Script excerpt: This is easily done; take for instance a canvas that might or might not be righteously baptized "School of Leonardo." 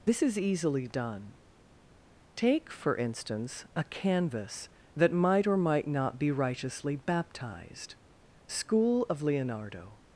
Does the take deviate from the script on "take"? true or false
false